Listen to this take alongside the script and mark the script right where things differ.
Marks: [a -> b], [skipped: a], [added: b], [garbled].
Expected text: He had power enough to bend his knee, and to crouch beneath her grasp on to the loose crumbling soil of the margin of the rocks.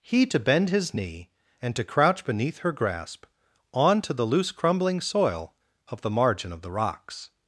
He [skipped: had power enough] to bend his knee, and to crouch beneath her grasp on to the loose crumbling soil of the margin of the rocks.